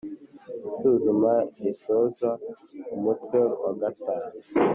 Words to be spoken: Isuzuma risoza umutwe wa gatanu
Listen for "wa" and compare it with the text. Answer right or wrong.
right